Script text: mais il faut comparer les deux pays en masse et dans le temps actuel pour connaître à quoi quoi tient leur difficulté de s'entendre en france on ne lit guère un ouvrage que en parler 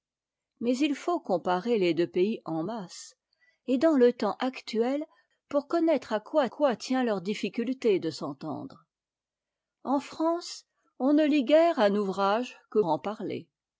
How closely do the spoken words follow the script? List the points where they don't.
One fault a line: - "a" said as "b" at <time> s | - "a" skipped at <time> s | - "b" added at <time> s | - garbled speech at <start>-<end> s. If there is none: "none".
none